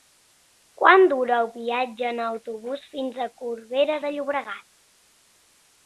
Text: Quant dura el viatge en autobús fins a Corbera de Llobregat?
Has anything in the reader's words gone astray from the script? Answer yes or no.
no